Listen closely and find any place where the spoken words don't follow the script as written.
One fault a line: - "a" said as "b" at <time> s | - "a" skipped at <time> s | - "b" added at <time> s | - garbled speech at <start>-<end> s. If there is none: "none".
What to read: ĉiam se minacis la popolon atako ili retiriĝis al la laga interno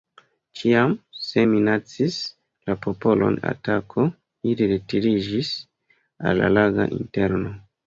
none